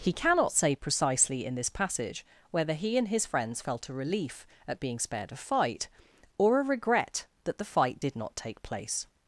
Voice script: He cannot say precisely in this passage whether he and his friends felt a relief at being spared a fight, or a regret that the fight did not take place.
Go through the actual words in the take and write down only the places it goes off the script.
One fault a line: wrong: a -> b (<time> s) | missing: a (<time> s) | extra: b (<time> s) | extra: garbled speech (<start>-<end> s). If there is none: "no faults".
no faults